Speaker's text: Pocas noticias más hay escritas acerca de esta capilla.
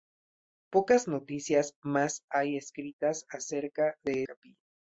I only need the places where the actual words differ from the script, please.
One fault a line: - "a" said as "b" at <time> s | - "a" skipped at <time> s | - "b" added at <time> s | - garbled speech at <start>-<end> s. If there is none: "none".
- "esta" skipped at 4.2 s